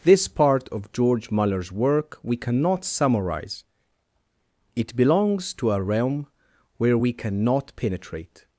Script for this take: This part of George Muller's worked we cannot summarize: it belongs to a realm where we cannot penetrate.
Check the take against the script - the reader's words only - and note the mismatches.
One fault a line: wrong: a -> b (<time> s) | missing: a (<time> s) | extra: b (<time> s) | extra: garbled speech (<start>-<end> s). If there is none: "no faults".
wrong: worked -> work (1.7 s)